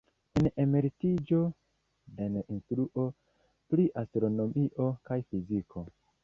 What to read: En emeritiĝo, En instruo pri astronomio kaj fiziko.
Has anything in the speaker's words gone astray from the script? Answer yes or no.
no